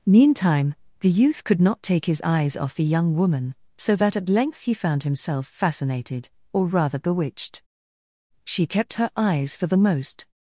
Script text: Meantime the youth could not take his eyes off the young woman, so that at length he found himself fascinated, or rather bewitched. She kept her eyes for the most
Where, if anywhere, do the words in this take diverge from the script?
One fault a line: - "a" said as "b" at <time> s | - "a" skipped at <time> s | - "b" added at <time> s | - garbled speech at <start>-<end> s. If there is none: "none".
none